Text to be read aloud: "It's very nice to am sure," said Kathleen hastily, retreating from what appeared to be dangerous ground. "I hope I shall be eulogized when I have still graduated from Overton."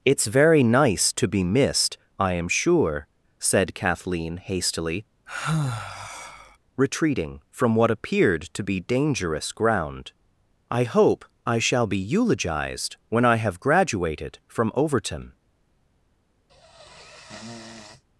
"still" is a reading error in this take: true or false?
true